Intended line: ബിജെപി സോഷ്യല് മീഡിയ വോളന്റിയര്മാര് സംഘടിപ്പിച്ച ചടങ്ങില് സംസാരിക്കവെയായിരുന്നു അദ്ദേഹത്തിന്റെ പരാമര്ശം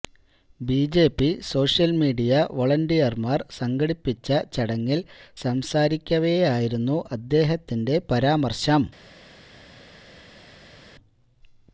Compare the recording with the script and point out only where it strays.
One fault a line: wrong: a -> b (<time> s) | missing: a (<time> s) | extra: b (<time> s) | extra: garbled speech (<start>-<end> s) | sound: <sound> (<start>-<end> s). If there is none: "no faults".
no faults